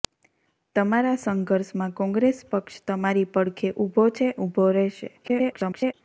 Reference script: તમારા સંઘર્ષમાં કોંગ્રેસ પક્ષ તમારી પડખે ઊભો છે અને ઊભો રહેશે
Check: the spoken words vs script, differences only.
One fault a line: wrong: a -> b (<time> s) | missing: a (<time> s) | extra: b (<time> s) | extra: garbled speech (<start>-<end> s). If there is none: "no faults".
missing: અને (4.3 s)
extra: garbled speech (5.2-5.9 s)